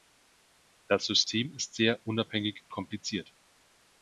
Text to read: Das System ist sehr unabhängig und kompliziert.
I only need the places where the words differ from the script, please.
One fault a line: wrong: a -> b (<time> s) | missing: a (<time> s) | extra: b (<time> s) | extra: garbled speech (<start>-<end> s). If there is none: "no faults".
missing: und (2.6 s)